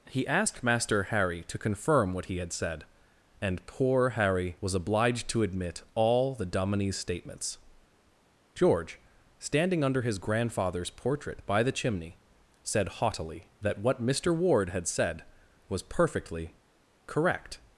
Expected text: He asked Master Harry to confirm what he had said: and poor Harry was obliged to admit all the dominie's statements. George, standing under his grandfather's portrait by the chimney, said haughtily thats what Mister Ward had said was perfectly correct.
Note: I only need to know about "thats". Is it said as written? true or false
false